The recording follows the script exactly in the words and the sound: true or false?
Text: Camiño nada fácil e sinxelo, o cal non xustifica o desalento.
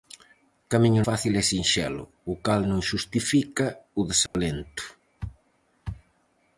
false